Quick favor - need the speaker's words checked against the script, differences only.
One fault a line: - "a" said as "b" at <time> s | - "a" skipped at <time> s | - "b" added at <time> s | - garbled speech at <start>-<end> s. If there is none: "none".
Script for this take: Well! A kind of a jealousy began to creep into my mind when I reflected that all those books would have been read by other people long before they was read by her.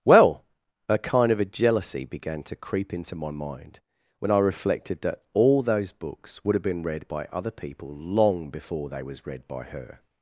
none